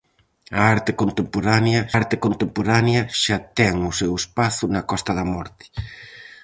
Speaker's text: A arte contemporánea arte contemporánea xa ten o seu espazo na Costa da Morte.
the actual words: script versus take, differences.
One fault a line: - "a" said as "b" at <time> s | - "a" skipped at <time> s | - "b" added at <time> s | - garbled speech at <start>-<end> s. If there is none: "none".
none